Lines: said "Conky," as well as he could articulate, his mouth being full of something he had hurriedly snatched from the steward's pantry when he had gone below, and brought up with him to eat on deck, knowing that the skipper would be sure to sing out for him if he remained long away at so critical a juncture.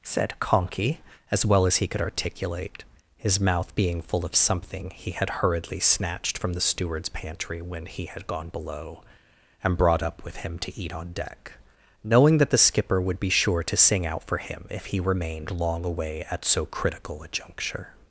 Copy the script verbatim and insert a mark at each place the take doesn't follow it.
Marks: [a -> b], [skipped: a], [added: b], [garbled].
said "Conky," as well as he could articulate, his mouth being full of something he had hurriedly snatched from the steward's pantry when he had gone below, and brought up with him to eat on deck, knowing that the skipper would be sure to sing out for him if he remained long away at so critical a juncture.